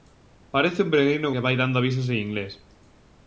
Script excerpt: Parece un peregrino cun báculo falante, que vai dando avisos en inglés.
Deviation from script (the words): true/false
true